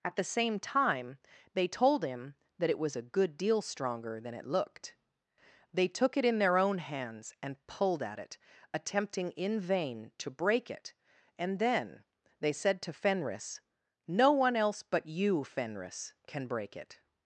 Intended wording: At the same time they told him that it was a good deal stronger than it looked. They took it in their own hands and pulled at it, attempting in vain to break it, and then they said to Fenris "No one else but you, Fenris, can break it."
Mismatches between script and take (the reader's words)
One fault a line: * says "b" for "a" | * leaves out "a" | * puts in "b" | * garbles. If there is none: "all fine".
all fine